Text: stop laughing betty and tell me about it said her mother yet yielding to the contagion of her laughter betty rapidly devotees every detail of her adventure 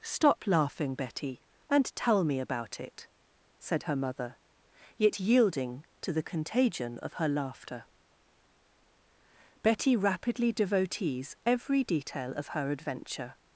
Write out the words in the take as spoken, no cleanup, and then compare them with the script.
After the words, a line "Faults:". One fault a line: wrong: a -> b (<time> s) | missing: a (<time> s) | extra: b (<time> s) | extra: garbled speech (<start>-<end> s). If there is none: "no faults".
stop laughing betty and tell me about it said her mother yet yielding to the contagion of her laughter betty rapidly devotees every detail of her adventure
Faults:
no faults